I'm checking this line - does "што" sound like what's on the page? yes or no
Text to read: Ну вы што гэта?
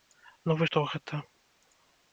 yes